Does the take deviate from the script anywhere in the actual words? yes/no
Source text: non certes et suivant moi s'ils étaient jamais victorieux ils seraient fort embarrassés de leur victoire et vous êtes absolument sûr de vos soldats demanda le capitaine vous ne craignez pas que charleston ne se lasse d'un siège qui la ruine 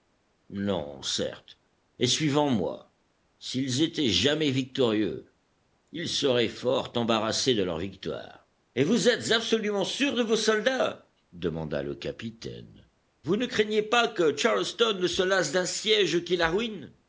no